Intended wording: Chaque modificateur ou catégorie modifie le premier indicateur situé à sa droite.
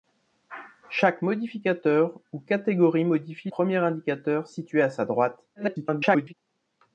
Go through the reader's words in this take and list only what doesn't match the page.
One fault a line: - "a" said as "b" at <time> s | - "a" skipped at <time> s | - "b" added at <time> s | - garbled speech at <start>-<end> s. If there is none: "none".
- "le" skipped at 3.5 s
- garbled speech at 5.5-6.3 s